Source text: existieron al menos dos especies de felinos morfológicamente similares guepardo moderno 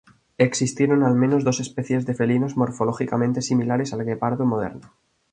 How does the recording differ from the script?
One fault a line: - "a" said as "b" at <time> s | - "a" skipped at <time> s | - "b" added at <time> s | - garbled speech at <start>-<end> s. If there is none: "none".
- "al" added at 3.9 s